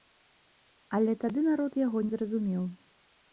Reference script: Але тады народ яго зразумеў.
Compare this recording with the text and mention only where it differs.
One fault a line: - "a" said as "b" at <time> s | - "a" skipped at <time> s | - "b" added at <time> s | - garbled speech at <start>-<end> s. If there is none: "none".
none